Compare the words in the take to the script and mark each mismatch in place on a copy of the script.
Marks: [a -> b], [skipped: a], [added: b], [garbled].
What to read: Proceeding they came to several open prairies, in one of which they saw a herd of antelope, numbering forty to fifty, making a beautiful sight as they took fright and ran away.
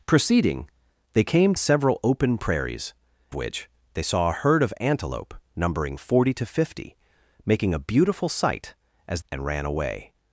Proceeding they came [skipped: to] several open prairies, [skipped: in one of] which they saw a herd of antelope, numbering forty to fifty, making a beautiful sight as [skipped: they took fright] and ran away.